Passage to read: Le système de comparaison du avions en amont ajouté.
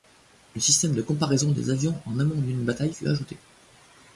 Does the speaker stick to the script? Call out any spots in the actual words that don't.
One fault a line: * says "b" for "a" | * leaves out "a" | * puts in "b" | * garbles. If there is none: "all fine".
* says "des" for "du"
* puts in "d'une bataille fut"